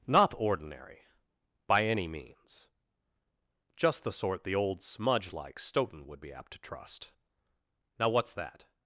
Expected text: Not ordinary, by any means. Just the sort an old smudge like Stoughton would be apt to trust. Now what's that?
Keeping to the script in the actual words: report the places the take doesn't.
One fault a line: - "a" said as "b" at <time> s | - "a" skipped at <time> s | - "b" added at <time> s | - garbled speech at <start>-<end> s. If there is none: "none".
- "an" said as "the" at 4.4 s